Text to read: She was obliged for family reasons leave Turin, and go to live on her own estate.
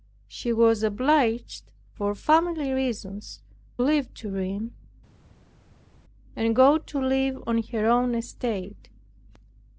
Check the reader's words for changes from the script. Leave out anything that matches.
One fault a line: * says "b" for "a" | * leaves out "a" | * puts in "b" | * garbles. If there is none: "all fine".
all fine